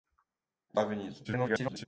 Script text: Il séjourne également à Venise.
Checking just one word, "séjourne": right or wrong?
wrong